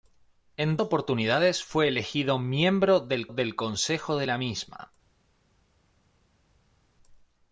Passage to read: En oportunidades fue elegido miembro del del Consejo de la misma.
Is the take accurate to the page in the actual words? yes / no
yes